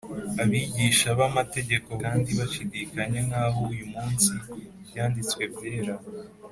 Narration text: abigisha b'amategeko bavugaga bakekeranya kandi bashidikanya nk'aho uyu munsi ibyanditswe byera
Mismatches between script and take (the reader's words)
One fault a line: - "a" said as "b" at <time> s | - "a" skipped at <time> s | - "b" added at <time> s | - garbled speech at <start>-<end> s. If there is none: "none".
- "bavugaga bakekeranya" skipped at 1.9 s